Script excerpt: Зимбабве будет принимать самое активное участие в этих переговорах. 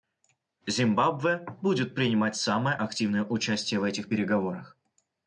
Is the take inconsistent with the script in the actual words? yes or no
no